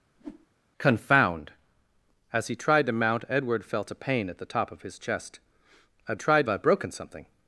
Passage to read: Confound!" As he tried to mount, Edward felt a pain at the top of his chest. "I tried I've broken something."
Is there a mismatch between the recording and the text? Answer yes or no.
no